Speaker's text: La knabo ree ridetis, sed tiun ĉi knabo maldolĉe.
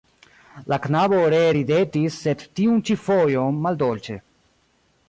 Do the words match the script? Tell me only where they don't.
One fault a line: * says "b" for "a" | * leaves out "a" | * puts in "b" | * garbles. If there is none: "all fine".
* says "fojon" for "knabo"